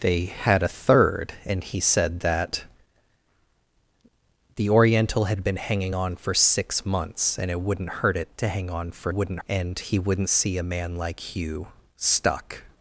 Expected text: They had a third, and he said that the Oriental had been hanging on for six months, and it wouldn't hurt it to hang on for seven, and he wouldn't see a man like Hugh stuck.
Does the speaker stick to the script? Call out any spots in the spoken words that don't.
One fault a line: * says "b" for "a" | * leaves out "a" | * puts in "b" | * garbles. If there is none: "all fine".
* says "wouldn't" for "seven"